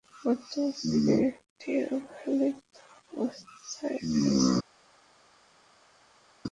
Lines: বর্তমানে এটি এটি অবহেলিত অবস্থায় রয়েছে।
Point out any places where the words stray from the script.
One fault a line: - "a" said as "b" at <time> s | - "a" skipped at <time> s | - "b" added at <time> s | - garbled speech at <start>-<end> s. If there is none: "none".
- "এটি" skipped at 1.7 s